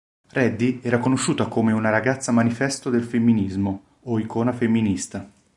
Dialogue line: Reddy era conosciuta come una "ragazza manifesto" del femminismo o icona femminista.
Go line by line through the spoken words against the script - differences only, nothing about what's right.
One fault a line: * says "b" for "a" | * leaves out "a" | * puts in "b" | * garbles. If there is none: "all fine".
all fine